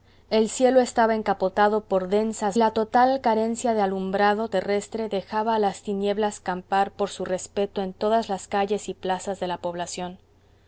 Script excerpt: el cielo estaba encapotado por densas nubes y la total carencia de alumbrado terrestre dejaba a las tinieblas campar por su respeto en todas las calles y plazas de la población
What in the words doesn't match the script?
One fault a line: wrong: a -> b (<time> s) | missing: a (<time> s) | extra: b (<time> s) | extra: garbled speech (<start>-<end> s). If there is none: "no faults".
missing: nubes y (2.6 s)